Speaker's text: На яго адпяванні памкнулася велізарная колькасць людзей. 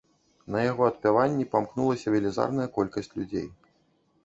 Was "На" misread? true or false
false